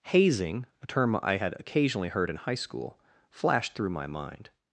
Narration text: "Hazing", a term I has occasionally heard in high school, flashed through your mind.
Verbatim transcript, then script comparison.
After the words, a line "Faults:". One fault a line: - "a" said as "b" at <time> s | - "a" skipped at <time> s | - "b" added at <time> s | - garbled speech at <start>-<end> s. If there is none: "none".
"Hazing", a term I had occasionally heard in high school, flashed through my mind.
Faults:
- "has" said as "had" at 1.3 s
- "your" said as "my" at 3.9 s